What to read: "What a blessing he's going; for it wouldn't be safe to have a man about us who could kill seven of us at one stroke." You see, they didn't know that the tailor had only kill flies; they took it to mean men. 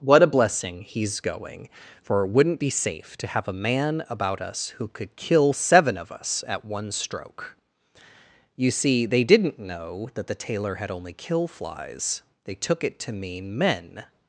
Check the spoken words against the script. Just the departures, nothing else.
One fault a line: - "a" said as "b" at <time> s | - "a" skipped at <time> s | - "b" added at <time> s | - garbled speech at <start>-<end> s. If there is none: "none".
none